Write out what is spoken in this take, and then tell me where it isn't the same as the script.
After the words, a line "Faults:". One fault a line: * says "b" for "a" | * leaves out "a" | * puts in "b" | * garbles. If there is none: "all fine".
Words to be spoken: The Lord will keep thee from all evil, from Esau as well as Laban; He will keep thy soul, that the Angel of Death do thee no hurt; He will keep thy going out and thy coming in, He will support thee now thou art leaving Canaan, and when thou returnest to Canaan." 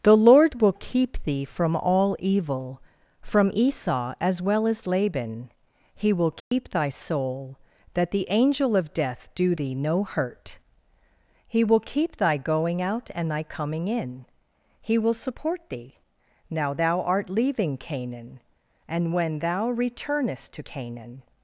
The Lord will keep thee from all evil, from Esau as well as Laban; He will keep thy soul, that the Angel of Death do thee no hurt; He will keep thy going out and thy coming in, He will support thee now thou art leaving Canaan, and when thou returnest to Canaan."
Faults:
all fine